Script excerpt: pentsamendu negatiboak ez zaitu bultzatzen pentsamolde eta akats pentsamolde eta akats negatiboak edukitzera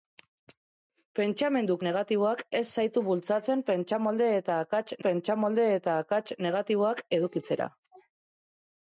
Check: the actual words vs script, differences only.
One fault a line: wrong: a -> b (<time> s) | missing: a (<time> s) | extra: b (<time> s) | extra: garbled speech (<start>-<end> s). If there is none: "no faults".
no faults